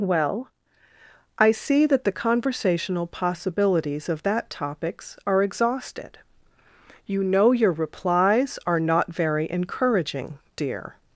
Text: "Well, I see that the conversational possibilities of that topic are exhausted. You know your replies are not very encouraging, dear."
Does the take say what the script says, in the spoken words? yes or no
no